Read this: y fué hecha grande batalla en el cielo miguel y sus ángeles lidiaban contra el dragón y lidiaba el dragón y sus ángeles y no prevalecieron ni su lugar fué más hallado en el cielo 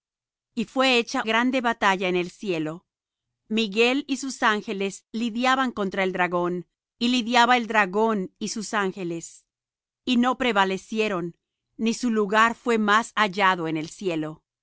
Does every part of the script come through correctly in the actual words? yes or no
yes